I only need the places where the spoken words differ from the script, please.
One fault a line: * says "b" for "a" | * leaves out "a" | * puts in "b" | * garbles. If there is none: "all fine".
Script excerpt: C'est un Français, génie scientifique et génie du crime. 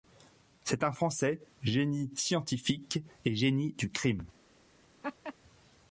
all fine